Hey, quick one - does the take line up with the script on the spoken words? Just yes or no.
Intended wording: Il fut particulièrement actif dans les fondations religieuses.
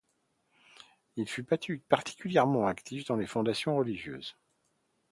yes